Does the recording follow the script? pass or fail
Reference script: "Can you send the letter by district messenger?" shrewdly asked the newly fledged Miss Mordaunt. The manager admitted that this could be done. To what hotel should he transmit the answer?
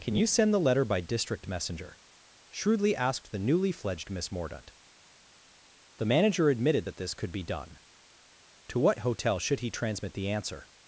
pass